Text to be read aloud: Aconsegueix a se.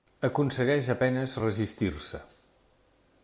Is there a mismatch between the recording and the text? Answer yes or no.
yes